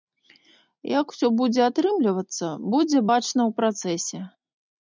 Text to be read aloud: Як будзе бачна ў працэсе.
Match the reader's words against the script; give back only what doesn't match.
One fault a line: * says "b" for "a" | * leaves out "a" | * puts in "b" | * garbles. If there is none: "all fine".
* puts in "усё будзе атрымлівацца"